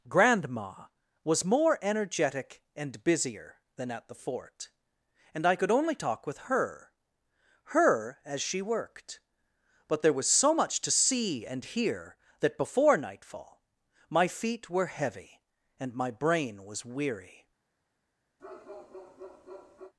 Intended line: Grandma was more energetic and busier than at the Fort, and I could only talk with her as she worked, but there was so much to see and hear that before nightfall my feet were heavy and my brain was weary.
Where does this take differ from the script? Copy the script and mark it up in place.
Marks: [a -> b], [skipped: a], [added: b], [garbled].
Grandma was more energetic and busier than at the Fort, and I could only talk with her [added: her] as she worked, but there was so much to see and hear that before nightfall my feet were heavy and my brain was weary.